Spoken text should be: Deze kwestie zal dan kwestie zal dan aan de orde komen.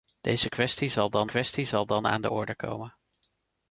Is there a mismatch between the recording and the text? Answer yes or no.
no